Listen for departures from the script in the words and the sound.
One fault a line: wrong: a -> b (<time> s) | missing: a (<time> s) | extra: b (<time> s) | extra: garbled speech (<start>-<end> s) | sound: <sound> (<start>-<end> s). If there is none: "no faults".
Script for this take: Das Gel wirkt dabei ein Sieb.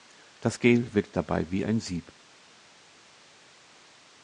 extra: wie (1.5 s)